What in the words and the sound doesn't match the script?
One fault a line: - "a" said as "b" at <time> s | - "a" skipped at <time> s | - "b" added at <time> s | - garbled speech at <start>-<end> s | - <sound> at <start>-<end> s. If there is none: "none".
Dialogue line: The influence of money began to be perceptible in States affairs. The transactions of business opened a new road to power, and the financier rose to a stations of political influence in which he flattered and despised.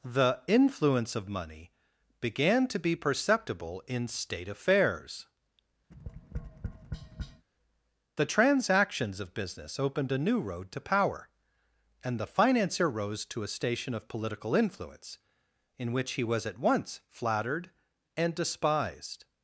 - "States" said as "State" at 4.1 s
- tap at 5.9-7.5 s
- "stations" said as "station" at 13.5 s
- "was at once" added at 16.2 s